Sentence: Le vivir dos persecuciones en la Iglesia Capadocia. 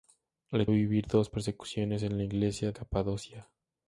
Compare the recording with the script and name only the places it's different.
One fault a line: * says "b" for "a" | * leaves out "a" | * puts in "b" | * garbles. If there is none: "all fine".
all fine